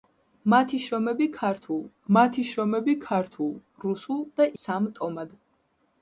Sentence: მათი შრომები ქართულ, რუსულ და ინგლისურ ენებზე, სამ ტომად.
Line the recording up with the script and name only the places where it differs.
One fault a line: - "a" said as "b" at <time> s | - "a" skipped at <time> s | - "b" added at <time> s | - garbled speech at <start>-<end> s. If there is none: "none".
- "მათი შრომები ქართულ" added at 2.1 s
- "ინგლისურ ენებზე" skipped at 4.5 s